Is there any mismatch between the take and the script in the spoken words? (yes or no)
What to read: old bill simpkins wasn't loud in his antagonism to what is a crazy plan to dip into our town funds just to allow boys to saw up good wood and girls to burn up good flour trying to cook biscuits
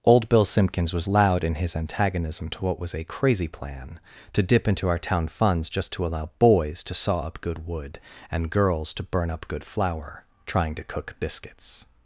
yes